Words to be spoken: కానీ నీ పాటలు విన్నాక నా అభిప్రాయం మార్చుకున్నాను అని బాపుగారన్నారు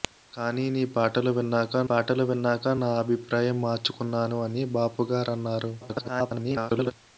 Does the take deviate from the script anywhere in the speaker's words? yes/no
yes